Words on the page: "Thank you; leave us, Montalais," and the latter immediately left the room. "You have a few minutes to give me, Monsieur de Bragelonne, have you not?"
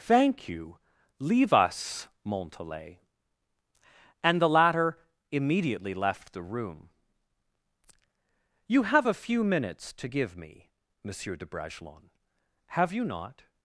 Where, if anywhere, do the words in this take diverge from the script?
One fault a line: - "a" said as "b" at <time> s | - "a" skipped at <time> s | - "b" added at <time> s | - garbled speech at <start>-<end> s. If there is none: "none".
none